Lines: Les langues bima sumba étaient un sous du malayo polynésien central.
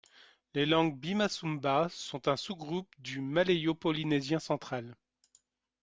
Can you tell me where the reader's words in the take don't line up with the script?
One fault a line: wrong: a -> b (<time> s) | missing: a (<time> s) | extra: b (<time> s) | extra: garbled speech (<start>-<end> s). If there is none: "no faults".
wrong: étaient -> sont (1.9 s)
extra: groupe (2.5 s)